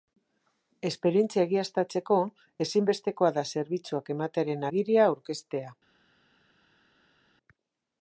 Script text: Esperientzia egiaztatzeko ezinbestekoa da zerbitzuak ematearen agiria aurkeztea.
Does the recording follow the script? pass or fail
pass